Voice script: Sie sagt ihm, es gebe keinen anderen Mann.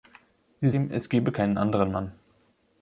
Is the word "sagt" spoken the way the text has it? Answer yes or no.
no